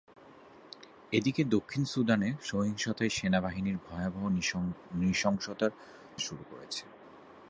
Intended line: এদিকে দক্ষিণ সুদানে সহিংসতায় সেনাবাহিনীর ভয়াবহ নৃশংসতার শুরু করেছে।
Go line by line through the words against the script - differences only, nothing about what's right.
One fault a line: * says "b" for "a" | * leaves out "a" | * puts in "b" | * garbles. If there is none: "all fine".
all fine